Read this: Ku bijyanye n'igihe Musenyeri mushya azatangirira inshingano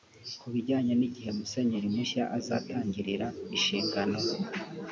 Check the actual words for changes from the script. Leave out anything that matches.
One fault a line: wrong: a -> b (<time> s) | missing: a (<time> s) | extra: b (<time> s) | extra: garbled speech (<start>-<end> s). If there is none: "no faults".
no faults